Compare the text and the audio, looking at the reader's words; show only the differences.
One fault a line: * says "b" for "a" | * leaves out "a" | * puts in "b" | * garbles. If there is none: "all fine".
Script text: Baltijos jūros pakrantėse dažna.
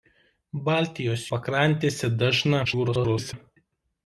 * leaves out "jūros"
* garbles